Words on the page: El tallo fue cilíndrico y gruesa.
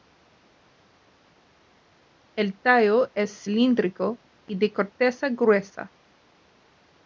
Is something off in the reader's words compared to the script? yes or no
yes